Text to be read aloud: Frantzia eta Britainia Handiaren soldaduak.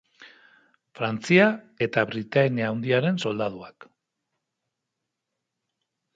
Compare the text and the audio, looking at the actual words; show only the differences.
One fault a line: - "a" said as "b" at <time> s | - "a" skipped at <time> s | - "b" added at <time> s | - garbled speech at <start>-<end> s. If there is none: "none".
none